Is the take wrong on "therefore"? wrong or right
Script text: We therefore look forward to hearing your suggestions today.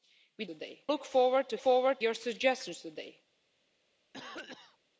wrong